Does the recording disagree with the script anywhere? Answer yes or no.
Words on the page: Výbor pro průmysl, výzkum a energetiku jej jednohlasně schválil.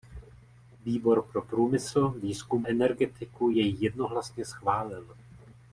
yes